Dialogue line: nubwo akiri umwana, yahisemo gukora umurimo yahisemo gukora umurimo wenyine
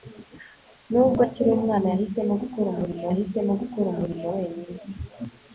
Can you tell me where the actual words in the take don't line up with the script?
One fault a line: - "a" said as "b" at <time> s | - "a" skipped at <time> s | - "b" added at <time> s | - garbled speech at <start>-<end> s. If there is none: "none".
none